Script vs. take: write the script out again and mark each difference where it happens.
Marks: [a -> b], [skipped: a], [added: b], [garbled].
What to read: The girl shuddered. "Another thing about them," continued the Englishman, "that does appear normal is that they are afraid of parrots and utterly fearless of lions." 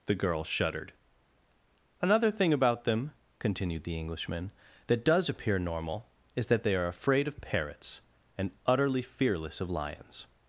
The girl shuddered. "Another thing about them," continued the Englishman, "that does appear normal is that they are afraid of parrots and utterly fearless of lions."